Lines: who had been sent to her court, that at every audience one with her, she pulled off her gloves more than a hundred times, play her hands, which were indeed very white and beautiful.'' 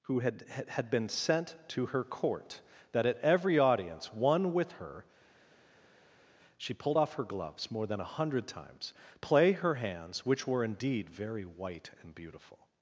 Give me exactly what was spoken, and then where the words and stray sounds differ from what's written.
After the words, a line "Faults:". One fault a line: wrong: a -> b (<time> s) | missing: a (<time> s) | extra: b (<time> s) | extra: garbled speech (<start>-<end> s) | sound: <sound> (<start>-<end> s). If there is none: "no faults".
who had had been sent to her court, that at every audience one with her, she pulled off her gloves more than a hundred times, play her hands, which were indeed very white and beautiful.''
Faults:
extra: had (0.7 s)